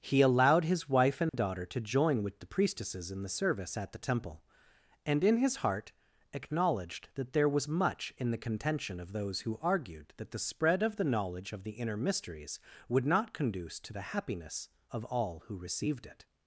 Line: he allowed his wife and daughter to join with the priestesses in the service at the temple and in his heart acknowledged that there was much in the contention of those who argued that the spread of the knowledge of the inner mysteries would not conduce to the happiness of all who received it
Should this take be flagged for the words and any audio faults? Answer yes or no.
yes